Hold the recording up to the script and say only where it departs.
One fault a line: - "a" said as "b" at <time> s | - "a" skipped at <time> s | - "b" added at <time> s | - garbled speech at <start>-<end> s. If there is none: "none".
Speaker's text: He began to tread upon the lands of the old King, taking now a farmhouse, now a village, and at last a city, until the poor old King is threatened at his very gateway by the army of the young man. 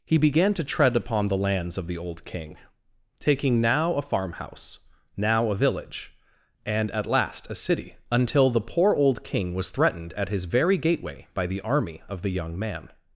- "is" said as "was" at 9.5 s